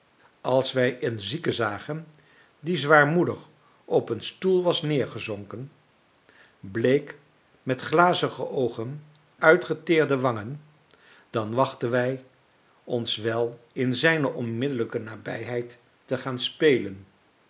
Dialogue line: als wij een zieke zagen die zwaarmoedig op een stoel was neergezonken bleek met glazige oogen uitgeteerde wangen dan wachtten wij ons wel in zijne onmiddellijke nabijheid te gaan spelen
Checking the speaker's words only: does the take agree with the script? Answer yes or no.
yes